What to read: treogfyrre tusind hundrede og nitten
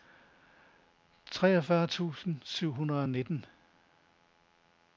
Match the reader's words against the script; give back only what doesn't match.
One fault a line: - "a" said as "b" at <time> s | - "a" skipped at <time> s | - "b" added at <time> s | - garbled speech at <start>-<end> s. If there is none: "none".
- "syv" added at 2.4 s